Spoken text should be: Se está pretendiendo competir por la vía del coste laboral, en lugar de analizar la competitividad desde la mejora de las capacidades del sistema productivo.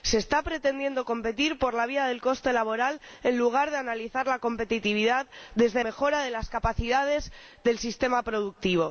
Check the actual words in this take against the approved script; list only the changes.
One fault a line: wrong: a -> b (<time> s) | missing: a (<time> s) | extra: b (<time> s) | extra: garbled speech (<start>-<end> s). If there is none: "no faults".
missing: la (5.8 s)